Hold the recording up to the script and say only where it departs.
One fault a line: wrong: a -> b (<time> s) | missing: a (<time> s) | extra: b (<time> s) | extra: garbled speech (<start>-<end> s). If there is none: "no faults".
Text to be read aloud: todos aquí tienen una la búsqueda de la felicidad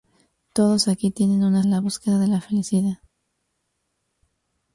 no faults